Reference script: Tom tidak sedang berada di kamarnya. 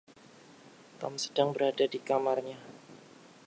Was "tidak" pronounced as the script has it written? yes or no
no